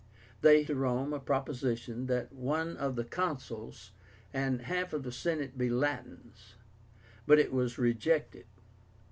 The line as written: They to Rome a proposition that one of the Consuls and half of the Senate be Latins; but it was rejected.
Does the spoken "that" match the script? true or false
true